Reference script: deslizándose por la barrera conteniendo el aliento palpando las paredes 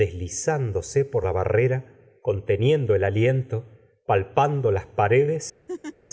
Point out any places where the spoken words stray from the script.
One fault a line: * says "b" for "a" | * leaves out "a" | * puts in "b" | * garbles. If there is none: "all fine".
all fine